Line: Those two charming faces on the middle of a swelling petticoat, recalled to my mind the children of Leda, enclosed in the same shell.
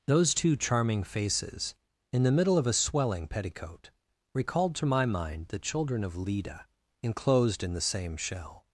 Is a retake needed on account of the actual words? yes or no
yes